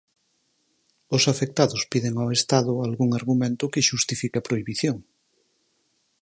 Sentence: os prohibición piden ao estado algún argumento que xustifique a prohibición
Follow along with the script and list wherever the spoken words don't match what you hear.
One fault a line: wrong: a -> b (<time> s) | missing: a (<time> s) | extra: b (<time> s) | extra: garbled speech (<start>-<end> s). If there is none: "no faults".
wrong: prohibición -> afectados (1.3 s)